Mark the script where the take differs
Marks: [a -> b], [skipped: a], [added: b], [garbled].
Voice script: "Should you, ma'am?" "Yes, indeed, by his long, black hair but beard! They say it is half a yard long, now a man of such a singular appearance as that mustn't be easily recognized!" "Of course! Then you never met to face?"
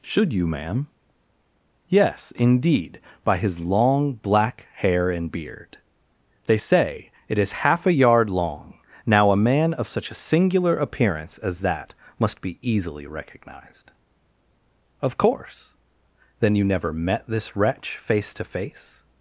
"Should you, ma'am?" "Yes, indeed, by his long, black hair [but -> and] beard! They say it is half a yard long, now a man of such a singular appearance as that [mustn't -> must] be easily recognized!" "Of course! Then you never met [added: this wretch face] to face?"